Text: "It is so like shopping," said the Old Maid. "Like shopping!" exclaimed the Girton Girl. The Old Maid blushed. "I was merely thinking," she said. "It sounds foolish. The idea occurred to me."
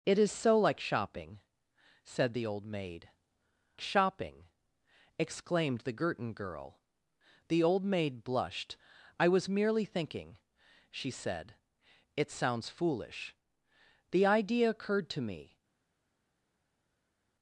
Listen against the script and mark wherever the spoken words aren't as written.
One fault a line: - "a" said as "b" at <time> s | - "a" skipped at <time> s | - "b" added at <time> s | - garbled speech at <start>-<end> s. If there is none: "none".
- "Like" skipped at 3.1 s